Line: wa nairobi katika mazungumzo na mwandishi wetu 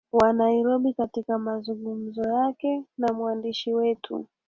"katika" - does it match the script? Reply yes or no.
yes